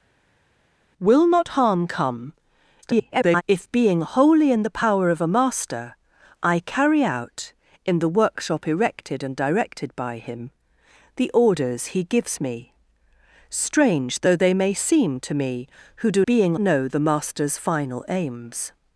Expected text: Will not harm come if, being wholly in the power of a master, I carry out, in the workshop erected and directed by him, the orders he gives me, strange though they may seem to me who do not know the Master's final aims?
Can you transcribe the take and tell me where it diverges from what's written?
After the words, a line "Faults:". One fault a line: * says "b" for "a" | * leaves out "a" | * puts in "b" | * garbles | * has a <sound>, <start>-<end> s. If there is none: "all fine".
Will not harm come [garbled] if, being wholly in the power of a master, I carry out, in the workshop erected and directed by him, the orders he gives me, strange though they may seem to me who do being know the Master's final aims?
Faults:
* garbles
* says "being" for "not"